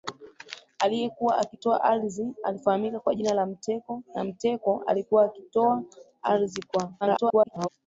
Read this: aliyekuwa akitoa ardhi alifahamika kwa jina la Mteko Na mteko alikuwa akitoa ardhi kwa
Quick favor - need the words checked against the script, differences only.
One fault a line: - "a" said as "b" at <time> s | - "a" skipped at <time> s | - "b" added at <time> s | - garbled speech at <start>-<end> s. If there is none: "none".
- garbled speech at 7.0-7.7 s